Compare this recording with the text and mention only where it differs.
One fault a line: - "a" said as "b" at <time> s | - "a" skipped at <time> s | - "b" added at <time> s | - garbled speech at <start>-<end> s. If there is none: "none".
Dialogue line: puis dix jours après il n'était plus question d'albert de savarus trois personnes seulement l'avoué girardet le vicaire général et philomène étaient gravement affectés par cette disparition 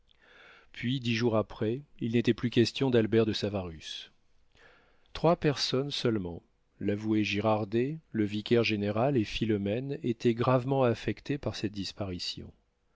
none